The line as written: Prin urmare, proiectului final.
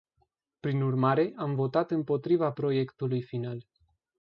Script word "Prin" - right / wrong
right